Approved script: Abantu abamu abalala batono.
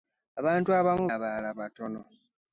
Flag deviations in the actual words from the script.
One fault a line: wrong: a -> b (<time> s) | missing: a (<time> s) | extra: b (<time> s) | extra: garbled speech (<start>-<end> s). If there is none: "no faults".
no faults